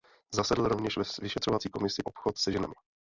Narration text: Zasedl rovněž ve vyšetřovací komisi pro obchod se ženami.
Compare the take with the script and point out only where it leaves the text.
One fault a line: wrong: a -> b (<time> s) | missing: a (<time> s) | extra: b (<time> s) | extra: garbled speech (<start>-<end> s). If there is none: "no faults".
missing: pro (2.0 s)